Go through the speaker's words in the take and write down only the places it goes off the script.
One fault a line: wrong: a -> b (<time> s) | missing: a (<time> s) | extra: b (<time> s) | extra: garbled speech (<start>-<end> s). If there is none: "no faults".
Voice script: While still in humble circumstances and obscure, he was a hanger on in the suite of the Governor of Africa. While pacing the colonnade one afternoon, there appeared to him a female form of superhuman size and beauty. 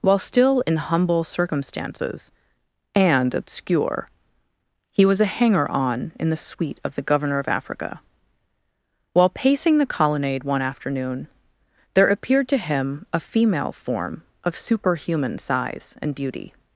no faults